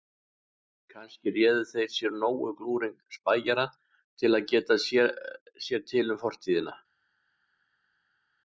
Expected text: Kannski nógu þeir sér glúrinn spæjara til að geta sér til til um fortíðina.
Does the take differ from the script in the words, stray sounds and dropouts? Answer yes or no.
yes